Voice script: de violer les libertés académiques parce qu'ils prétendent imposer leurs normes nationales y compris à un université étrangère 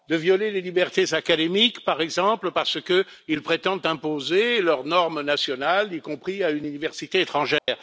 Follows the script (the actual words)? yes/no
no